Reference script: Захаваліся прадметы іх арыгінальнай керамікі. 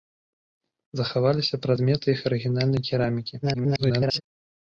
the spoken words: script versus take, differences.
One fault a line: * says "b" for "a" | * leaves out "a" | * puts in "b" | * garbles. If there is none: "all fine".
* garbles